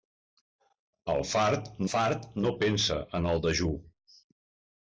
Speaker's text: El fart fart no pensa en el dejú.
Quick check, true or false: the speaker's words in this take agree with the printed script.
true